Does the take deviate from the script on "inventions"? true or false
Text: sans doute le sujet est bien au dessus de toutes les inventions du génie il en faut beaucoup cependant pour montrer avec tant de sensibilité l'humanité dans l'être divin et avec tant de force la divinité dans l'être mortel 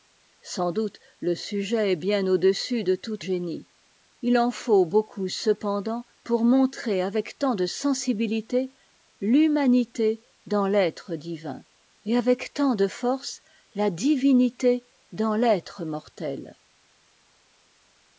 true